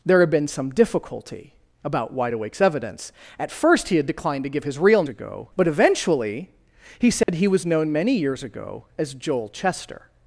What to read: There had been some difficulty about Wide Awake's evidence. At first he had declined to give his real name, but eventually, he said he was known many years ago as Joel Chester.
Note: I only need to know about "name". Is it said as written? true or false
false